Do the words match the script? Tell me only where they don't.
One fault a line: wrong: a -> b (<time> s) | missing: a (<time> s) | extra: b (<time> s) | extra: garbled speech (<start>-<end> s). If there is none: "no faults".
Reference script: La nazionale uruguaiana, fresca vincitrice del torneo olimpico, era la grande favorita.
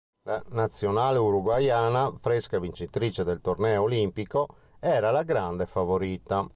no faults